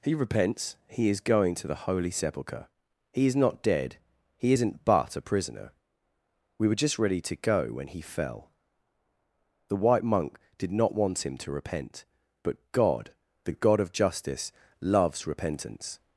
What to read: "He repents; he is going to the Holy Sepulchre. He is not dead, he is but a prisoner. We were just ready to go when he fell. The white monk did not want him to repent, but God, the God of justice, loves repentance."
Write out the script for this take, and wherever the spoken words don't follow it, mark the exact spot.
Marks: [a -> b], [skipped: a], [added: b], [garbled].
"He repents; he is going to the Holy Sepulchre. He is not dead, he [is -> isn't] but a prisoner. We were just ready to go when he fell. The white monk did not want him to repent, but God, the God of justice, loves repentance."